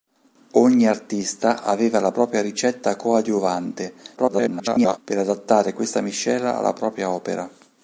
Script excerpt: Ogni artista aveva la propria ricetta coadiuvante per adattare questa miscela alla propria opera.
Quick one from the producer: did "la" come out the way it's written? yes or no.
yes